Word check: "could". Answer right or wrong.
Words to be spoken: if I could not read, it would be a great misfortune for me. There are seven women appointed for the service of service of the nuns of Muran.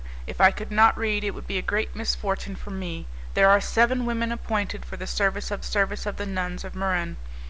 right